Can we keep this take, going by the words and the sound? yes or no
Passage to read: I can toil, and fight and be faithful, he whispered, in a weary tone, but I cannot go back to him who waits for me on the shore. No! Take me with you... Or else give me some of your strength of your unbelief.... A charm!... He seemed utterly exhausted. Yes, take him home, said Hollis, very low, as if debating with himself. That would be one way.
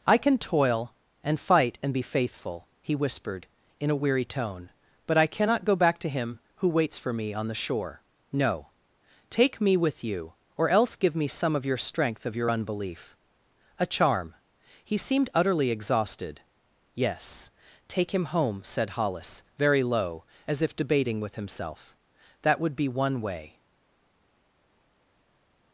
yes